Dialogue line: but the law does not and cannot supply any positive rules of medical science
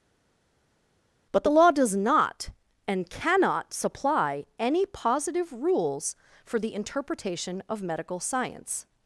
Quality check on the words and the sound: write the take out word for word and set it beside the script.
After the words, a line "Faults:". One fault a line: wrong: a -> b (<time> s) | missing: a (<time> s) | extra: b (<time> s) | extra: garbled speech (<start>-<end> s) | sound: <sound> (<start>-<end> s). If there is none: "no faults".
but the law does not and cannot supply any positive rules for the interpretation of medical science
Faults:
extra: for the interpretation (6.4 s)